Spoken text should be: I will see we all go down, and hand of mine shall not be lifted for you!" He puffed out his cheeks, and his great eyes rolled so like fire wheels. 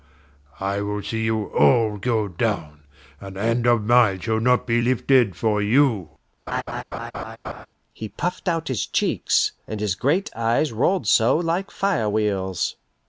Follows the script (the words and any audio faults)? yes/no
no